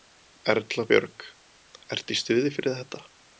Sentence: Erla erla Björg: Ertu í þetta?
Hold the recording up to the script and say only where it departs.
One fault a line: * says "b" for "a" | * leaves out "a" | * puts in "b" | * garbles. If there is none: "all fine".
* leaves out "erla"
* puts in "stuði fyrir"